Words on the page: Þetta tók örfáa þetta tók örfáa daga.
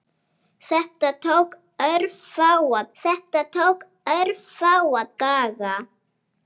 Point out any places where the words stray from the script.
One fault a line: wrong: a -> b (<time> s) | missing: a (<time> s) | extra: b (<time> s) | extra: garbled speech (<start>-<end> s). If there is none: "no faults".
no faults